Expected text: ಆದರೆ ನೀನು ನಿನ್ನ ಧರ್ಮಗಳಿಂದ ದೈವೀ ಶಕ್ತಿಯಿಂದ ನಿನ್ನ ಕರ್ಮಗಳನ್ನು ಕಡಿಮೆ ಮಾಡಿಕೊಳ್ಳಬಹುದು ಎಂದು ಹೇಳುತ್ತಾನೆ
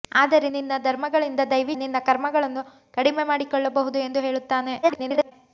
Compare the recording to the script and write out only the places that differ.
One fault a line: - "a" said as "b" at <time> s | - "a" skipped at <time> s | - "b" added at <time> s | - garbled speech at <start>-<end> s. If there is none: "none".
- "ನೀನು" skipped at 0.5 s
- "ಶಕ್ತಿಯಿಂದ" skipped at 1.7 s
- garbled speech at 4.8-5.3 s